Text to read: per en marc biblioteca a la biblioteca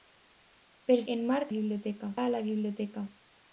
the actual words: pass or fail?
pass